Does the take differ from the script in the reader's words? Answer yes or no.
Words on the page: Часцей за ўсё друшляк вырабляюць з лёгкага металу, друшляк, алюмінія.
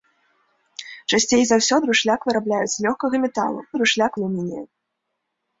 no